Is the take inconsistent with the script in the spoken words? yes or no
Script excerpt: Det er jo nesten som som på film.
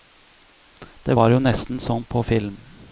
yes